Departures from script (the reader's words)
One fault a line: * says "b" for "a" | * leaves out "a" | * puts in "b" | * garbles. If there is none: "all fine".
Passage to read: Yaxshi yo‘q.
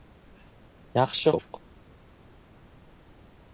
all fine